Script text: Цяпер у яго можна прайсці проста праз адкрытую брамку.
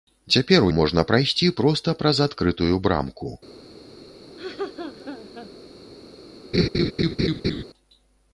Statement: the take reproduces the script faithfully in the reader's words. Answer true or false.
false